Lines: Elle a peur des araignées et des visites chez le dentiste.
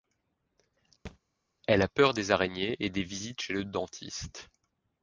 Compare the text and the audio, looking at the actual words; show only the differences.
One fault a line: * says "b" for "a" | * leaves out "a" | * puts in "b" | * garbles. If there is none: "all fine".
all fine